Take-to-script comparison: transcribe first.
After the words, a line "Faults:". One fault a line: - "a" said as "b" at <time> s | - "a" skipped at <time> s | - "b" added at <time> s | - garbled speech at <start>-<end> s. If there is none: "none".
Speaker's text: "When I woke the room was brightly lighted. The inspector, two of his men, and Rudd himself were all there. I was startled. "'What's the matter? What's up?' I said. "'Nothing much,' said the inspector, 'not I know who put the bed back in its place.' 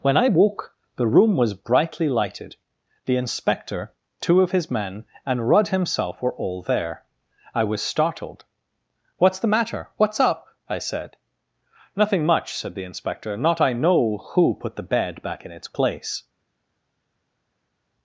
"When I woke the room was brightly lighted. The inspector, two of his men, and Rudd himself were all there. I was startled. "'What's the matter? What's up?' I said. "'Nothing much,' said the inspector, 'not I know who put the bed back in its place.'
Faults:
none